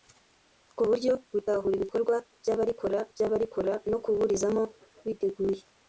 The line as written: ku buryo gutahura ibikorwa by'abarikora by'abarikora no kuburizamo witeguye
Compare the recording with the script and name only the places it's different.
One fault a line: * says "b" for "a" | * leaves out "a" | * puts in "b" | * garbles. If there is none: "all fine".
all fine